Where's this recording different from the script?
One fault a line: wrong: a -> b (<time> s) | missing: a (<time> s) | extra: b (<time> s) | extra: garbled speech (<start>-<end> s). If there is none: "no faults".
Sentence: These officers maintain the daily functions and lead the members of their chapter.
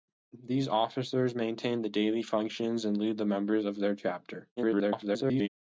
extra: garbled speech (4.6-5.5 s)